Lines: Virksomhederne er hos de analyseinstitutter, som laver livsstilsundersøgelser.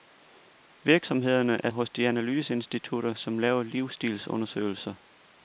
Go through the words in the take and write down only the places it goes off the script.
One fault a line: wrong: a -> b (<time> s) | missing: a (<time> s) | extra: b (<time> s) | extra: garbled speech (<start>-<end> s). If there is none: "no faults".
no faults